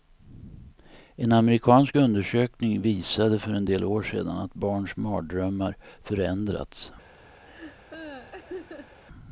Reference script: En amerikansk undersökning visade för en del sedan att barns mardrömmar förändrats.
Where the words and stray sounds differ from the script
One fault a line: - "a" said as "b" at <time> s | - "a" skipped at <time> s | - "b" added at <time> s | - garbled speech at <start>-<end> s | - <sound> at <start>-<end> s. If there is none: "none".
- "år" added at 3.8 s
- laugh at 7.4-9.0 s